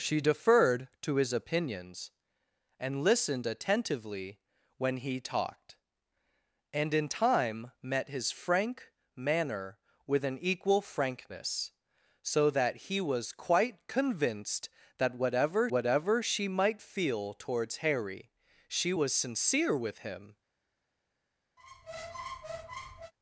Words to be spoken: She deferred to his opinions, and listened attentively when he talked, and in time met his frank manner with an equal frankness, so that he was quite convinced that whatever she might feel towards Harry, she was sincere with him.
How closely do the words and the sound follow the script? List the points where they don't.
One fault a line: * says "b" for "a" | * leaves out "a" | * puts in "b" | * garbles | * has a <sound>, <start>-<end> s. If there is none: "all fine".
* puts in "whatever"
* has a squeak, 21.6-23.1 s